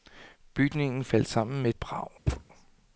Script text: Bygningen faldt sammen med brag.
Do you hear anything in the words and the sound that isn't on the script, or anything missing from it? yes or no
yes